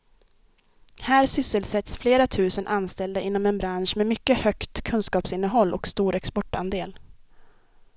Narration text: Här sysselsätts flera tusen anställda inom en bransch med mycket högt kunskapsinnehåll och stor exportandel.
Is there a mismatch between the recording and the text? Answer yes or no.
no